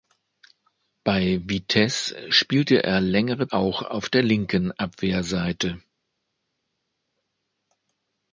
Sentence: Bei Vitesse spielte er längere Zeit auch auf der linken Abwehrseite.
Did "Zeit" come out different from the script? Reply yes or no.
yes